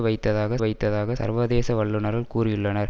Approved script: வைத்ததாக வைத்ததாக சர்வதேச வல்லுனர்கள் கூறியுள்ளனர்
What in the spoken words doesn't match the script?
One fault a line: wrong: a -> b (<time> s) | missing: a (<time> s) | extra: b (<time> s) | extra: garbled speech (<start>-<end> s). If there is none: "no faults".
no faults